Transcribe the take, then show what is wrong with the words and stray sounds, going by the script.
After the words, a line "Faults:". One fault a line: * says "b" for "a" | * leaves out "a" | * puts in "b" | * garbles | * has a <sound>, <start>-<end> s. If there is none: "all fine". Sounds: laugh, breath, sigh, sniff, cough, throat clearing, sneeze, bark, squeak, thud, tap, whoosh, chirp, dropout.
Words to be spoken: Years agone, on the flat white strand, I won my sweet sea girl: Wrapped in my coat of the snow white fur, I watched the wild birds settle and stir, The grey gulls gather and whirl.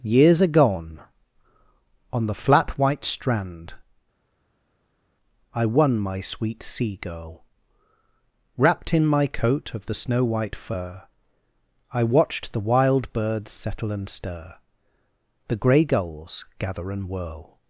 Years agone, on the flat white strand, I won my sweet sea girl: Wrapped in my coat of the snow white fur, I watched the wild birds settle and stir, The grey gulls gather and whirl.
Faults:
all fine